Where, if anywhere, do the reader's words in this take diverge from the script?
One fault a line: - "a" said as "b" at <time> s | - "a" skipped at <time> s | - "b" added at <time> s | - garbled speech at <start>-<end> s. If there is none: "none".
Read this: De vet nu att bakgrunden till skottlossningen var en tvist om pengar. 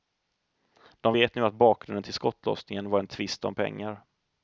none